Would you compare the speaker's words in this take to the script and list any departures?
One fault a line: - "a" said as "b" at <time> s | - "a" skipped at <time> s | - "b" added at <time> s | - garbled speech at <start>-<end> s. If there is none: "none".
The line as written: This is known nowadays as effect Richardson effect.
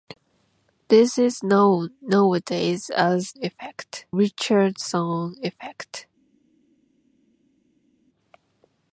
none